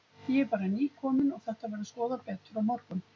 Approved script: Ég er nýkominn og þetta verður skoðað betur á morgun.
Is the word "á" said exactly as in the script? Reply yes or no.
yes